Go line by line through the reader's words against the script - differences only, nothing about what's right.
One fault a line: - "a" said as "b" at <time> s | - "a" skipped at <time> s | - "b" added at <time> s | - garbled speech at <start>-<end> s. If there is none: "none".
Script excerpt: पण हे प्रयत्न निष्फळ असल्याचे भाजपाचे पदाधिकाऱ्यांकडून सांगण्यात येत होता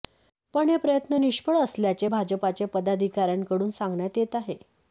- "होता" said as "आहे" at 4.4 s